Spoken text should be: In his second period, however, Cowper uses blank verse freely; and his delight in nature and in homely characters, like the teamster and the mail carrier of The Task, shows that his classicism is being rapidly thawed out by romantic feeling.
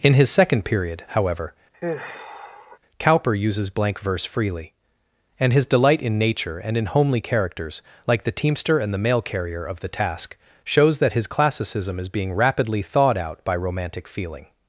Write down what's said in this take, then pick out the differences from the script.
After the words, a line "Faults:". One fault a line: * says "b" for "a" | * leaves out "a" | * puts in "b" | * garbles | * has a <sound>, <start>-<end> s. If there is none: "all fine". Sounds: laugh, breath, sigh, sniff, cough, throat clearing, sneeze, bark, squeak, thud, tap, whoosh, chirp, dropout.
In his second period, however, Cowper uses blank verse freely; and his delight in nature and in homely characters, like the teamster and the mail carrier of The Task, shows that his classicism is being rapidly thawed out by romantic feeling.
Faults:
* has a sigh, 1.7-2.8 s